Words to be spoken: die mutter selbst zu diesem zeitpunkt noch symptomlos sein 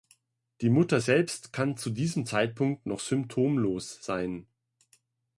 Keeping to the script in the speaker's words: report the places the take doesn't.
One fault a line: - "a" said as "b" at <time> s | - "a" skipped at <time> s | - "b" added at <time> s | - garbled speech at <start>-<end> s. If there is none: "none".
- "kann" added at 1.5 s